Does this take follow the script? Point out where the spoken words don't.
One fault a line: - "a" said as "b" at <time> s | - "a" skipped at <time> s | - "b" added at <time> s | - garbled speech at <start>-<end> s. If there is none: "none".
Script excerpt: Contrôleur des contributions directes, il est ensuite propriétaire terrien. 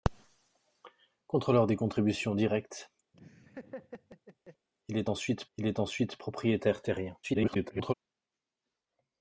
- "il est ensuite" added at 5.6 s
- garbled speech at 7.2-7.9 s